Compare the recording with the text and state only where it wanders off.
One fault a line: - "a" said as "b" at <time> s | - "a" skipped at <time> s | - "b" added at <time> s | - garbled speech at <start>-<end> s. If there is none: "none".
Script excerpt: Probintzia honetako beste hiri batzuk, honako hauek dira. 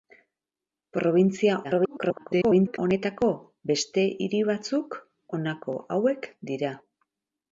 - garbled speech at 1.6-2.8 s